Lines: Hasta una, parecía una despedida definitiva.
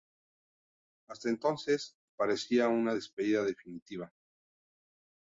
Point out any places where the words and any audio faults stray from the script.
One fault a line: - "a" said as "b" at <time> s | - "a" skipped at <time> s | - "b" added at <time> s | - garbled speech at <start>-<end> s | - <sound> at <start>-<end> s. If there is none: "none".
- "una" said as "entonces" at 1.3 s